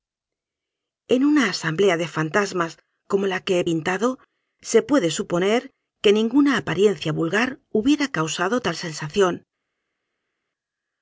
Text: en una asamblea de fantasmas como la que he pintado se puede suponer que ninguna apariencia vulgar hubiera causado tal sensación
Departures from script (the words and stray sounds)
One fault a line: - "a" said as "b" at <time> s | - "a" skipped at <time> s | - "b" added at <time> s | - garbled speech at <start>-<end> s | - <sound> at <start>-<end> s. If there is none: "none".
none